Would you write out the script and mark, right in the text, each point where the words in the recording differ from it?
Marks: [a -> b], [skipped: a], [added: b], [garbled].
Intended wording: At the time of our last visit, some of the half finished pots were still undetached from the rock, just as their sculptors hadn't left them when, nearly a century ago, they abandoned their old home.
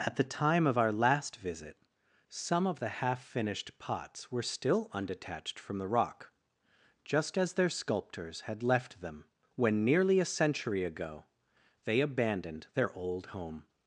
At the time of our last visit, some of the half finished pots were still undetached from the rock, just as their sculptors [hadn't -> had] left them when, nearly a century ago, they abandoned their old home.